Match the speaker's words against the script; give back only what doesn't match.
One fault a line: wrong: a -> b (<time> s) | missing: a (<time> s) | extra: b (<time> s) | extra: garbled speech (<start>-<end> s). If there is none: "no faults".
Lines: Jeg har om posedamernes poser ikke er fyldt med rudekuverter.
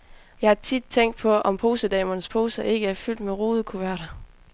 extra: tit tænkt på (0.6 s)